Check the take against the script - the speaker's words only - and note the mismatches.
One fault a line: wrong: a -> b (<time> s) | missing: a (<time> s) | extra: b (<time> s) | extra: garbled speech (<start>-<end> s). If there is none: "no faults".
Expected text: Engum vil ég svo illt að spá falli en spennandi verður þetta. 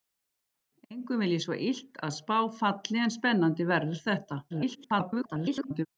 extra: garbled speech (4.5-5.9 s)